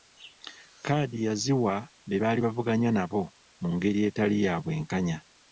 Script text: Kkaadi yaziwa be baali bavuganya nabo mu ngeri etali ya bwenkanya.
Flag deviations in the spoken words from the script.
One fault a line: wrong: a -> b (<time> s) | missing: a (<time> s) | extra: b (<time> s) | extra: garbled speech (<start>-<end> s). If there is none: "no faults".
no faults